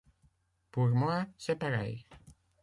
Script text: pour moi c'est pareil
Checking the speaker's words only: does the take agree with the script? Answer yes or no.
yes